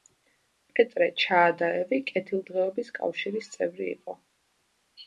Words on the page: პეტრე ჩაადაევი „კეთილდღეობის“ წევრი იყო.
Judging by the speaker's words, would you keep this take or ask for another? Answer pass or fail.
fail